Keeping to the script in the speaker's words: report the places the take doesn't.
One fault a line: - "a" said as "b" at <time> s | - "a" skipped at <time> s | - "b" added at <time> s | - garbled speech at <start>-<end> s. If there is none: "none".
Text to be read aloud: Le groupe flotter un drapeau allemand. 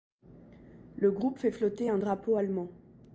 - "fait" added at 1.4 s